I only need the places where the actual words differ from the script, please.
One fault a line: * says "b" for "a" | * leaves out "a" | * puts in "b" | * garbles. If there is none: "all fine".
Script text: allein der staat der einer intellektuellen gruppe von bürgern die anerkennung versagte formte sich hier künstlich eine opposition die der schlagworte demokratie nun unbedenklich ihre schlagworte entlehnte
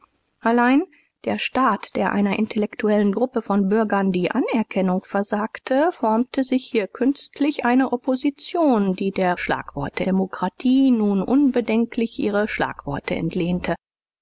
all fine